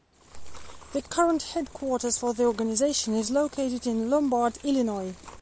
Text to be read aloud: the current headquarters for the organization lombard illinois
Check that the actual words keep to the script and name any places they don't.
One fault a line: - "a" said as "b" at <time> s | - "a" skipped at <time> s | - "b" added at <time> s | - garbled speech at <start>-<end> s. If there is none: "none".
- "is located in" added at 3.1 s